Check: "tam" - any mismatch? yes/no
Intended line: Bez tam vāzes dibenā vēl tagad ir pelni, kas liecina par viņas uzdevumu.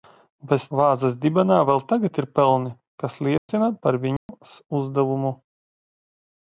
yes